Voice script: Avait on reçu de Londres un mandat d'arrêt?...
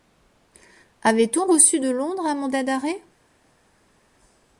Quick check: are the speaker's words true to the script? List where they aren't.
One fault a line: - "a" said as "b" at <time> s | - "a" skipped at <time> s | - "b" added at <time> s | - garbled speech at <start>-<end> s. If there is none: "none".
none